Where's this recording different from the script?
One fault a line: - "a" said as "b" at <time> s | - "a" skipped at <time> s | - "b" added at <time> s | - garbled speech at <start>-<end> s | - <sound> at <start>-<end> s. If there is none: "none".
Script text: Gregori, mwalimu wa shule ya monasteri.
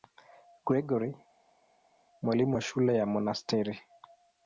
none